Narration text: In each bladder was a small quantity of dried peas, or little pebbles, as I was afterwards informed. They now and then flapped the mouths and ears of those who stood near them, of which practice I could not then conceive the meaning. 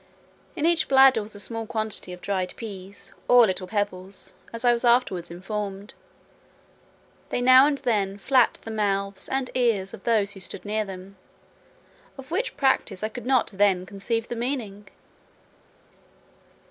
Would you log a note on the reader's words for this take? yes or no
no